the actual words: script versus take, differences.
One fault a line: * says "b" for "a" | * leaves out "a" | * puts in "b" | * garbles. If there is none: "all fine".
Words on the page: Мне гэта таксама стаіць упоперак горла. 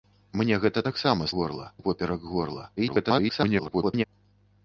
* says "горла" for "стаіць"
* garbles